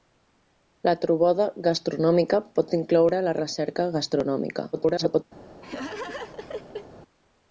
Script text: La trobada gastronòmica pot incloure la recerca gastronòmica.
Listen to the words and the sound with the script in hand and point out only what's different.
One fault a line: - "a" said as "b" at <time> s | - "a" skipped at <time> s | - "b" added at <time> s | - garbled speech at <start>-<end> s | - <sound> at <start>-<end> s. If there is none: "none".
- garbled speech at 4.7-5.2 s
- laugh at 5.6-6.9 s